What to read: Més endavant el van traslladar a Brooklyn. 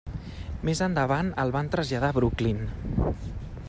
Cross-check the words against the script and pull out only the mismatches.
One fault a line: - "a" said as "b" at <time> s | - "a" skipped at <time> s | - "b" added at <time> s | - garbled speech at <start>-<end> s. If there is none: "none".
none